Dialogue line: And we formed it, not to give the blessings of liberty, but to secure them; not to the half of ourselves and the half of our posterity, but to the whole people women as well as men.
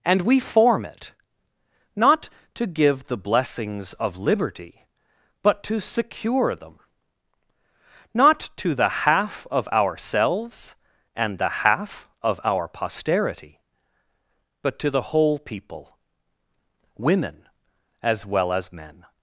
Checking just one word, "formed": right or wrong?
wrong